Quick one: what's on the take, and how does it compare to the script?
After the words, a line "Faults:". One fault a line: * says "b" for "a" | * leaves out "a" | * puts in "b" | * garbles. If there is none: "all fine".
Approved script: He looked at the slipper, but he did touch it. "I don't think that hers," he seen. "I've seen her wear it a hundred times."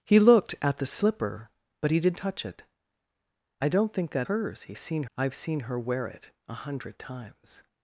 He looked at the slipper, but he did touch it. "I don't think that hers," he seen. "I've seen her wear it a hundred times."
Faults:
all fine